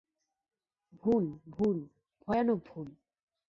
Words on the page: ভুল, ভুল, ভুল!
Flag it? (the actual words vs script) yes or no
yes